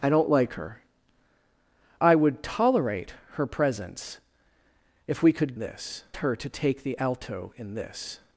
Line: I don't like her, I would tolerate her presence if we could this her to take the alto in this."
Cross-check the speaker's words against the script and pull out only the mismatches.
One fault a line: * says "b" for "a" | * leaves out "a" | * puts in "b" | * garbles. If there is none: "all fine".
all fine